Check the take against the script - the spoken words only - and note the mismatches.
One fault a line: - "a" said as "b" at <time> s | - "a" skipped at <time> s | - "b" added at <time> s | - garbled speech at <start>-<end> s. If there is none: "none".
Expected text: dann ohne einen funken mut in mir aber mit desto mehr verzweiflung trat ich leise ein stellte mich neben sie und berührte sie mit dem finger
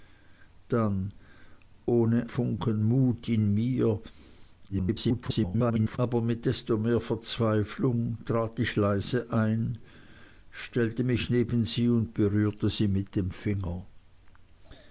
- "einen" skipped at 2.3 s
- garbled speech at 4.7-6.0 s